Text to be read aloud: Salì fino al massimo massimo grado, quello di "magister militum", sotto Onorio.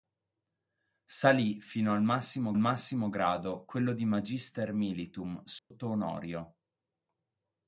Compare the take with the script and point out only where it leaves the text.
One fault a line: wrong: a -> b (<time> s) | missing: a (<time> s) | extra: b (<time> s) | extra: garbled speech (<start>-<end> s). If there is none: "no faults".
no faults